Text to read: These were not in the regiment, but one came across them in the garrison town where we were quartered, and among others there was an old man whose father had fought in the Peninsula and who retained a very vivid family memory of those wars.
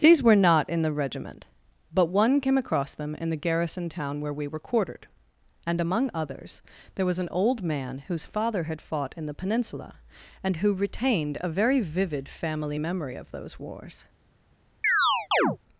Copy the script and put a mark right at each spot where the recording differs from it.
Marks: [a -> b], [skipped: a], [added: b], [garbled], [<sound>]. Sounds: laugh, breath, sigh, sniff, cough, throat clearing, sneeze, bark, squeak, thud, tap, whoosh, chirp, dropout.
These were not in the regiment, but one came across them in the garrison town where we were quartered, and among others there was an old man whose father had fought in the Peninsula and who retained a very vivid family memory of those wars. [chirp]